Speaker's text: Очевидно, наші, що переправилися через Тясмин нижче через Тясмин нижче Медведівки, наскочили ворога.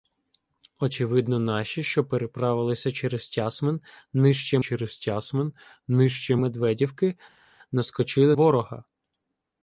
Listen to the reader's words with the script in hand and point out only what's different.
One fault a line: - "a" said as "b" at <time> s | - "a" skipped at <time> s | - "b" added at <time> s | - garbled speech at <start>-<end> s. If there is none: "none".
none